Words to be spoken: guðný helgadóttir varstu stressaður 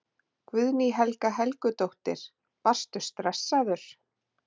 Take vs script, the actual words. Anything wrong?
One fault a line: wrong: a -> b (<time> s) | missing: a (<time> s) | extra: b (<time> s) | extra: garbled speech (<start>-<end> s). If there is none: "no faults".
extra: helga (1.0 s)